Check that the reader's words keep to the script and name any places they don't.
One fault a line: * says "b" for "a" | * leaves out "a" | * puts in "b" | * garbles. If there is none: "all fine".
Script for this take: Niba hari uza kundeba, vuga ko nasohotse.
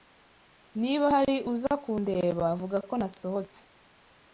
all fine